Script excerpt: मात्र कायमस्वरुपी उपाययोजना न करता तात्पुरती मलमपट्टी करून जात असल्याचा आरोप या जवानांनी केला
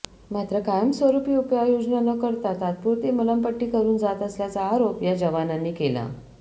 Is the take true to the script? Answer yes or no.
yes